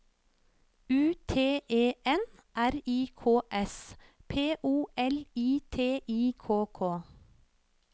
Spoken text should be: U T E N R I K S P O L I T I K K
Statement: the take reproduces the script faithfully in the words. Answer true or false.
true